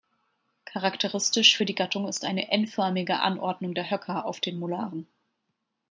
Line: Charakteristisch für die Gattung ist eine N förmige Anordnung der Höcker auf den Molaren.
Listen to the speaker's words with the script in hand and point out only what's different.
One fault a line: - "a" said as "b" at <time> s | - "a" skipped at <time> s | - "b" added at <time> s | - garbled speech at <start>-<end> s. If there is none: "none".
none